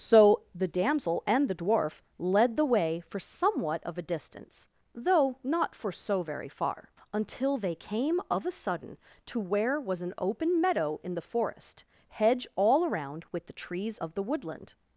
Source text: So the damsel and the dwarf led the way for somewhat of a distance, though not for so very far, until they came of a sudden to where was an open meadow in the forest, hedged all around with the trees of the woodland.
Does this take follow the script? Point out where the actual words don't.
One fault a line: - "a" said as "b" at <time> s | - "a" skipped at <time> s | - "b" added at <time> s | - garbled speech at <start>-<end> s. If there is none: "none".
- "hedged" said as "hedge" at 12.1 s